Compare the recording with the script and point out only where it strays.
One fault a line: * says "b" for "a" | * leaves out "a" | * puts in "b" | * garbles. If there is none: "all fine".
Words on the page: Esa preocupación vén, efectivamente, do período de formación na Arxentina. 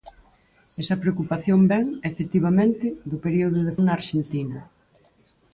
* leaves out "formación"